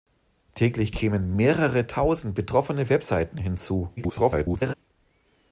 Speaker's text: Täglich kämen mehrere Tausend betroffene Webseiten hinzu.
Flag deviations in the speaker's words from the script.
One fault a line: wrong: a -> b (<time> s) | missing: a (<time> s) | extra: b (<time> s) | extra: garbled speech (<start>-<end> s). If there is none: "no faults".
extra: garbled speech (4.0-4.7 s)